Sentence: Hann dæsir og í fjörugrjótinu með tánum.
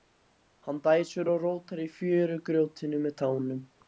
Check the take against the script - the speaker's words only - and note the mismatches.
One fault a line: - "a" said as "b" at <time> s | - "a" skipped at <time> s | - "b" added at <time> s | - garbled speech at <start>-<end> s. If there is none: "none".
- "rótar" added at 1.4 s